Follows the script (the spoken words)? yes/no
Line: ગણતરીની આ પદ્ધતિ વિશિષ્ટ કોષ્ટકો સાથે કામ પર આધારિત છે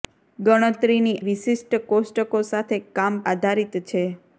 no